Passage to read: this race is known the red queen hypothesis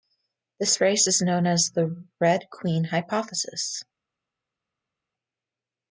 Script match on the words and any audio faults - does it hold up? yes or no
no